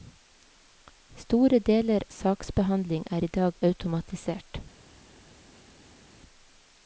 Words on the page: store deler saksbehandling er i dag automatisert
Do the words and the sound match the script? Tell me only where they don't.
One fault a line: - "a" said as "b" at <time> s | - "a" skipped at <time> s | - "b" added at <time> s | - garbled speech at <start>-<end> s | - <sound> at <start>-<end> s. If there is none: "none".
none